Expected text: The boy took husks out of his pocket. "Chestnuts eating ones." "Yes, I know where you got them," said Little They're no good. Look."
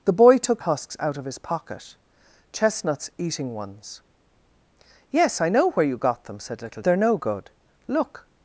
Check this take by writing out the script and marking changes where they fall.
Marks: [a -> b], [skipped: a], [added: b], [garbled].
The boy took husks out of his pocket. "Chestnuts eating ones." "Yes, I know where you got them," said Little They're no good. Look."